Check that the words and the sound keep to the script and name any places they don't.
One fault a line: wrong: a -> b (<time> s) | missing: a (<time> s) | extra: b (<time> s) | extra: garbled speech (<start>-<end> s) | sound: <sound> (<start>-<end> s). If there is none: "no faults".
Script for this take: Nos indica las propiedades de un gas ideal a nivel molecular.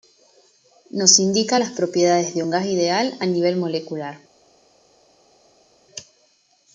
no faults